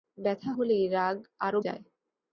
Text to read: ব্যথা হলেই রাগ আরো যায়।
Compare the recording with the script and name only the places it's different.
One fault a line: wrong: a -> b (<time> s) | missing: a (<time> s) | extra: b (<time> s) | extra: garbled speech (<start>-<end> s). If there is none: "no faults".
no faults